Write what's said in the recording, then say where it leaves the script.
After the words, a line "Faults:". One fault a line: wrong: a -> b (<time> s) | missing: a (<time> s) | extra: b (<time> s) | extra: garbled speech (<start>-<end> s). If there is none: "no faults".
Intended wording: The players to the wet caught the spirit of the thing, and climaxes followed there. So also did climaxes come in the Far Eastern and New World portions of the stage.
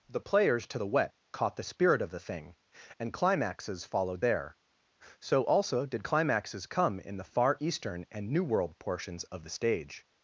The players to the wet caught the spirit of the thing, and climaxes followed there. So also did climaxes come in the Far Eastern and New World portions of the stage.
Faults:
no faults